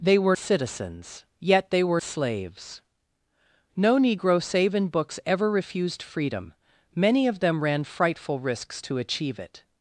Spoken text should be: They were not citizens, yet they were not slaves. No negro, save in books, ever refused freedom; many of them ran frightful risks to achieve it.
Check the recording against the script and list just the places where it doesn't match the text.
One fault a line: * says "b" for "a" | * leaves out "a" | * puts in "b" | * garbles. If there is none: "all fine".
* leaves out "not"
* leaves out "not"